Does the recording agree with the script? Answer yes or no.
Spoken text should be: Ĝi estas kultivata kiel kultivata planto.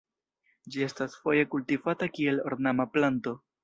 no